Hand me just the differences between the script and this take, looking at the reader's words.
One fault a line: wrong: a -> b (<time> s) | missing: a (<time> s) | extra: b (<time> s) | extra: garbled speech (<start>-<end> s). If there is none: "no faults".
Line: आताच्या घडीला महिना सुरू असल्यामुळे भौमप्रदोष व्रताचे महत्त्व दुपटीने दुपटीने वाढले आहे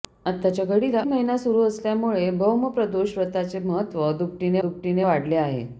no faults